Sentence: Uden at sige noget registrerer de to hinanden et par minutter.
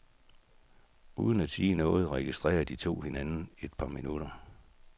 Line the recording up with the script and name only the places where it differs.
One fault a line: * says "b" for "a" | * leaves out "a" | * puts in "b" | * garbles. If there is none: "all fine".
all fine